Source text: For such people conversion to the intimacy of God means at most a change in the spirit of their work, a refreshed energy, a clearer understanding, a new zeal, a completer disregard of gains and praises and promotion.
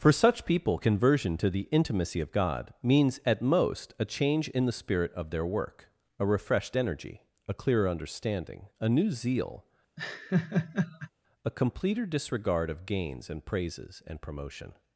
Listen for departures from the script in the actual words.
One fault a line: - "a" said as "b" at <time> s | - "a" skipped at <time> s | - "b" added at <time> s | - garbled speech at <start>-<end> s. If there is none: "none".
none